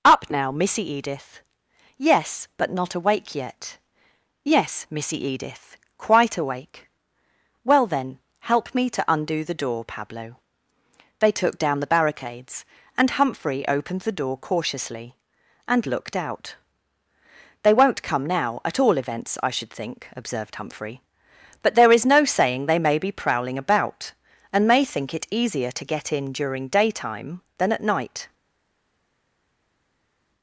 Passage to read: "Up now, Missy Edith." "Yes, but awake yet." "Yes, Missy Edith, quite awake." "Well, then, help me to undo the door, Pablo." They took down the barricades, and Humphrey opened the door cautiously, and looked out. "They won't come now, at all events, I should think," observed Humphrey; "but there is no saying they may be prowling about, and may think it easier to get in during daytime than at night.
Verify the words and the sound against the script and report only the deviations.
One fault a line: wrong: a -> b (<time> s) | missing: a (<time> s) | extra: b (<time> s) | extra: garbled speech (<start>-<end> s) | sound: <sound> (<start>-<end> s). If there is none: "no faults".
extra: not (2.7 s)